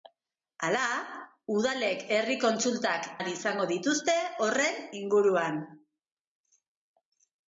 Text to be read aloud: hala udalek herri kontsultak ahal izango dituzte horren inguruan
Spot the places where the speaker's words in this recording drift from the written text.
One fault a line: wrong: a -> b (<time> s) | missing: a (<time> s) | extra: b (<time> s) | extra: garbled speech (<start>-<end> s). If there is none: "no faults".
no faults